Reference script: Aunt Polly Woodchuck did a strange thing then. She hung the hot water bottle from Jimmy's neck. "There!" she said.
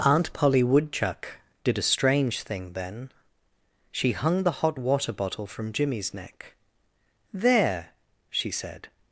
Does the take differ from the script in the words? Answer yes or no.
no